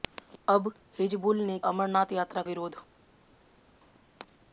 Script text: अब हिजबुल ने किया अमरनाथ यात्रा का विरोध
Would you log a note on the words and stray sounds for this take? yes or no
yes